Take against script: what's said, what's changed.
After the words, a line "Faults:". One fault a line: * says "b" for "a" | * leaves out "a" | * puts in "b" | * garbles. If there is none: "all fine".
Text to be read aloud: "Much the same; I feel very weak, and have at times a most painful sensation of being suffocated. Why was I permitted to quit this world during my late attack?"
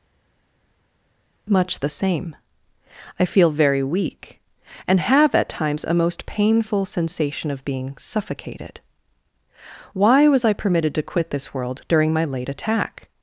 "Much the same; I feel very weak, and have at times a most painful sensation of being suffocated. Why was I permitted to quit this world during my late attack?"
Faults:
all fine